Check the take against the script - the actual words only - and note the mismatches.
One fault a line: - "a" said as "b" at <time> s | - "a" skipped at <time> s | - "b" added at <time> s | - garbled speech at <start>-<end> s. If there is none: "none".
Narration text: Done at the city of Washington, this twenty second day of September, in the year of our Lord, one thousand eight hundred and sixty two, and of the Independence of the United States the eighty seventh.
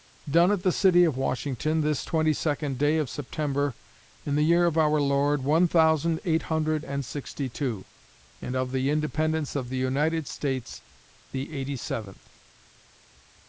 none